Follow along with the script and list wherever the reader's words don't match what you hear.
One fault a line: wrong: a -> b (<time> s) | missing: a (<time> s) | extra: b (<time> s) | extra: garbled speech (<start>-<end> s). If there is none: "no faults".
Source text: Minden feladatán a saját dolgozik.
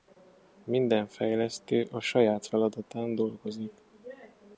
wrong: feladatán -> fejlesztő (1.1 s)
extra: feladatán (2.4 s)